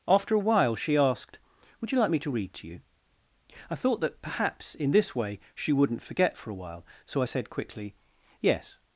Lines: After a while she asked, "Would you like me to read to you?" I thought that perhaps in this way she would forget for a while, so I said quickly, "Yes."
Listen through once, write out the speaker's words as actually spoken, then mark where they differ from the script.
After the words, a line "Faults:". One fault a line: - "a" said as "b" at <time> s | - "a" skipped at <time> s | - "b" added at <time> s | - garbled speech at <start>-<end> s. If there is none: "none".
After a while she asked, "Would you like me to read to you?" I thought that perhaps in this way she wouldn't forget for a while, so I said quickly, "Yes."
Faults:
- "would" said as "wouldn't" at 5.7 s